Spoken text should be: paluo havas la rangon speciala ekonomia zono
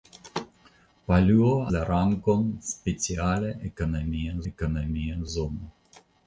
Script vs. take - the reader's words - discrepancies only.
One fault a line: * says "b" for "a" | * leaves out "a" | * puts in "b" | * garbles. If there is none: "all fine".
* leaves out "havas"
* puts in "ekonomia"